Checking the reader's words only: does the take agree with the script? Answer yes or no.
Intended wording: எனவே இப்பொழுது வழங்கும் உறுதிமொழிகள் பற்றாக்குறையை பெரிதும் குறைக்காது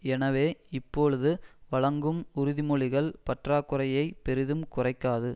yes